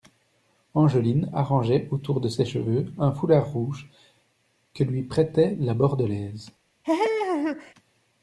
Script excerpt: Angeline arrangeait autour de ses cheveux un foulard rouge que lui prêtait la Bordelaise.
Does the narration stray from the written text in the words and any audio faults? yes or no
yes